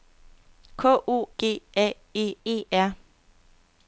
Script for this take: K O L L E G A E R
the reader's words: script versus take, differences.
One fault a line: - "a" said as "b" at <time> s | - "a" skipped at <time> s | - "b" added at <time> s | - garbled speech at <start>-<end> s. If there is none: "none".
- "L L" said as "G A" at 1.4 s
- "G A" skipped at 2.3 s